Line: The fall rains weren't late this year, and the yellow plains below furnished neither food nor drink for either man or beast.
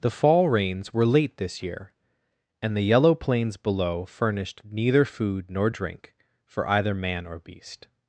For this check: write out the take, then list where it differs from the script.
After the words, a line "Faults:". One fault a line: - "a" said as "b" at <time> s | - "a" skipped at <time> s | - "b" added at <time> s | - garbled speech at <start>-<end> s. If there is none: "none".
The fall rains were late this year, and the yellow plains below furnished neither food nor drink for either man or beast.
Faults:
- "weren't" said as "were" at 0.9 s